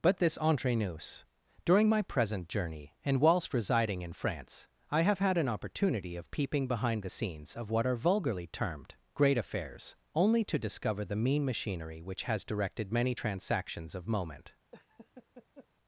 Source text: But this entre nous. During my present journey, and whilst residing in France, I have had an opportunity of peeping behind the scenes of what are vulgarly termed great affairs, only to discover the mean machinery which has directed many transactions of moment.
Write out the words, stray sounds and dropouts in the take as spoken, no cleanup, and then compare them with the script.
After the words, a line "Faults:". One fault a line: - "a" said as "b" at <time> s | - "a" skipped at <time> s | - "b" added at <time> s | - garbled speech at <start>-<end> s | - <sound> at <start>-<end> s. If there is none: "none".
But this entre nous. During my present journey, and whilst residing in France, I have had an opportunity of peeping behind the scenes of what are vulgarly termed great affairs, only to discover the mean machinery which has directed many transactions of moment.
Faults:
- laugh at 14.7-15.7 s